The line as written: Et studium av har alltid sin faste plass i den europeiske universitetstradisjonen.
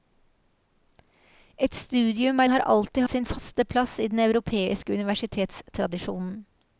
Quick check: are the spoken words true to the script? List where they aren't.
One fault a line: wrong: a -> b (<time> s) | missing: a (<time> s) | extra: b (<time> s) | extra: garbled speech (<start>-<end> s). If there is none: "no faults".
no faults